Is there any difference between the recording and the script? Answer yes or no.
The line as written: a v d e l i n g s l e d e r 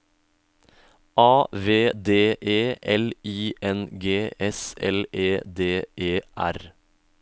no